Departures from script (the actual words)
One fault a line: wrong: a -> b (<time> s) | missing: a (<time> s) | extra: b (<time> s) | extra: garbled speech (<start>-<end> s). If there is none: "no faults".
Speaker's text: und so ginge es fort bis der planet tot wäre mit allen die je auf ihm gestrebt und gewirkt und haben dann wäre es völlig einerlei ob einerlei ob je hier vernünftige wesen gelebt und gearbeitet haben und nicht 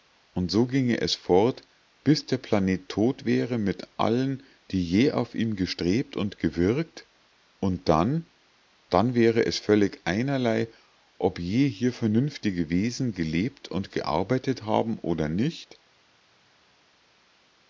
wrong: haben -> dann (7.9 s)
missing: einerlei ob (11.4 s)
wrong: und -> oder (15.0 s)